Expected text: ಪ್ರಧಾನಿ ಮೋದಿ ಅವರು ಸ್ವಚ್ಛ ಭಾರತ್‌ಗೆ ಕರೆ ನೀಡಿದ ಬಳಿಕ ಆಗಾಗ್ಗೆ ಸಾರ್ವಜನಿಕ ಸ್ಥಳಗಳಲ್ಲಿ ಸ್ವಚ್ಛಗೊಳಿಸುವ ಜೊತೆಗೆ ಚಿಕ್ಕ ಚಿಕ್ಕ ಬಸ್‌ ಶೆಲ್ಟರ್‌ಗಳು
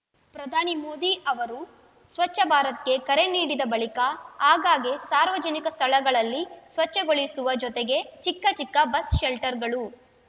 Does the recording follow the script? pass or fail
pass